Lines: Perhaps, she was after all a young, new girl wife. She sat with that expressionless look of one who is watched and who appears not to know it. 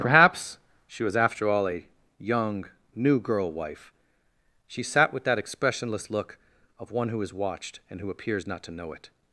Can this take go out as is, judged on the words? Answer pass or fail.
pass